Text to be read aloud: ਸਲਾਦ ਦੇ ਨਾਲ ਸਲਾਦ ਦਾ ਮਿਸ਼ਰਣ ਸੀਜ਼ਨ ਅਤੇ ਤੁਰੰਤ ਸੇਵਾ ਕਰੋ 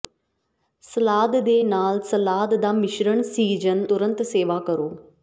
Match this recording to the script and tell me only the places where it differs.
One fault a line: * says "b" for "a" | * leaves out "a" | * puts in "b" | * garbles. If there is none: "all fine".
* leaves out "ਅਤੇ"